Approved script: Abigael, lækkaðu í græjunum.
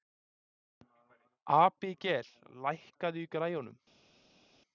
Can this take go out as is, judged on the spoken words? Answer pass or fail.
pass